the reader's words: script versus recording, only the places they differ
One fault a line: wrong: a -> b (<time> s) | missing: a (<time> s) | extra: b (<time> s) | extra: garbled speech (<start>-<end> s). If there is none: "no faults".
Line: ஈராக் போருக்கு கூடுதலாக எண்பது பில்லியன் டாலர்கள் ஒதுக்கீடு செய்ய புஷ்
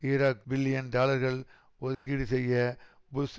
missing: போருக்கு கூடுதலாக எண்பது (0.5 s)